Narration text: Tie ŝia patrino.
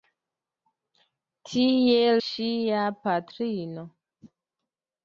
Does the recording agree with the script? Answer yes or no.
yes